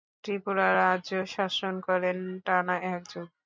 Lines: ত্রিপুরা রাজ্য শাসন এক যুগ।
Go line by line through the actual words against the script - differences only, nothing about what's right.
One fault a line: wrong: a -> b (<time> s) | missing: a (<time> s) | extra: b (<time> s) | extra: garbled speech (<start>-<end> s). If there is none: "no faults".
extra: করেন টানা (1.9 s)